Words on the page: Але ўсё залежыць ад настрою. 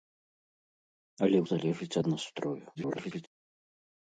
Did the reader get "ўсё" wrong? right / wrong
wrong